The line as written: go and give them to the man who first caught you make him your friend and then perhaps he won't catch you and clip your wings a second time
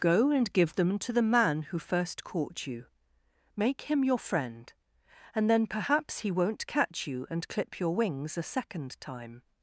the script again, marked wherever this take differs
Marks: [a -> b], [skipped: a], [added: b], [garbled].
go and give them to the man who first caught you make him your friend and then perhaps he won't catch you and clip your wings a second time